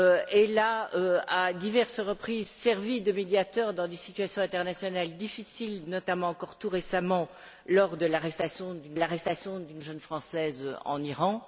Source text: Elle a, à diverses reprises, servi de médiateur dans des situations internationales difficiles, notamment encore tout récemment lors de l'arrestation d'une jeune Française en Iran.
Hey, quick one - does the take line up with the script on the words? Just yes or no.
no